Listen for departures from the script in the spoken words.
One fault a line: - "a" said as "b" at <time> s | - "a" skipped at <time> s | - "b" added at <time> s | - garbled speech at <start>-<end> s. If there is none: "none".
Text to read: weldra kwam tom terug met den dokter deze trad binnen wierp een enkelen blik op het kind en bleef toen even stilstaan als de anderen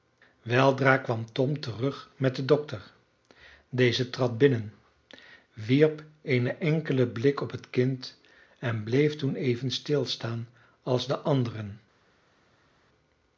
none